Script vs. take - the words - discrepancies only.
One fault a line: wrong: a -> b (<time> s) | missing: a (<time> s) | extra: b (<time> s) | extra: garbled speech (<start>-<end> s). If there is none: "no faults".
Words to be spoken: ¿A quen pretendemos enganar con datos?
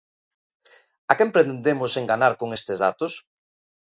extra: estes (2.6 s)